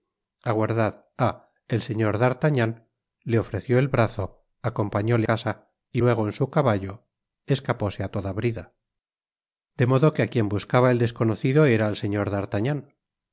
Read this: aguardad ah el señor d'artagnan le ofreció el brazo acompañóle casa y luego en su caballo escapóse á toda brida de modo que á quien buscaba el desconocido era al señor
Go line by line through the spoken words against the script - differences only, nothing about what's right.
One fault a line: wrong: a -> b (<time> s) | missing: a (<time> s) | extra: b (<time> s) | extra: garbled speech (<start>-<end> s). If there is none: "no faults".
no faults